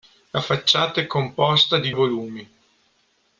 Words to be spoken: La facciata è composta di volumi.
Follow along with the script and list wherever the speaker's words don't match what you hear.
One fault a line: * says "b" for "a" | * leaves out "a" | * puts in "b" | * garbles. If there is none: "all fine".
all fine